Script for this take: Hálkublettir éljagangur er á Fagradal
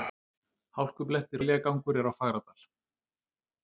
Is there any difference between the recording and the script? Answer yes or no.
no